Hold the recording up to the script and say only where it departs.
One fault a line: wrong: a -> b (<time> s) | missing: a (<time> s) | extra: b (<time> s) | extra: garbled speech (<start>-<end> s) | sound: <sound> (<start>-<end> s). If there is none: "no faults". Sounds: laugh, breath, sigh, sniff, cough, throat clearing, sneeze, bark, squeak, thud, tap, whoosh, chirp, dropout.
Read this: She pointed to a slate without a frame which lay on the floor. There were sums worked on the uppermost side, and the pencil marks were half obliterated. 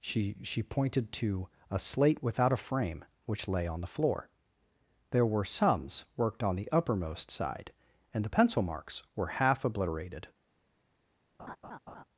extra: she (0.4 s)
sound: laugh (11.4-12.0 s)